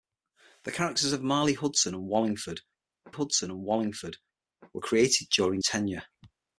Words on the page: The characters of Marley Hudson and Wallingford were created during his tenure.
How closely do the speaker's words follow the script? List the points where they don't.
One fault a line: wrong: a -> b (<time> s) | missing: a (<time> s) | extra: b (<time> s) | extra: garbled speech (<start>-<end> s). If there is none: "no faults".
extra: Hudson and Wallingford (3.1 s)
missing: his (5.6 s)